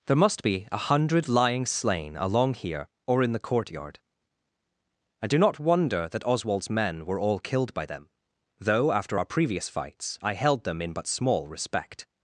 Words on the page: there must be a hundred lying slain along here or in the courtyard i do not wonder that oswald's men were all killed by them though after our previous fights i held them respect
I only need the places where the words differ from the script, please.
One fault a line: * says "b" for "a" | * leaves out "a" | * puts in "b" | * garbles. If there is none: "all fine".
* puts in "in but small"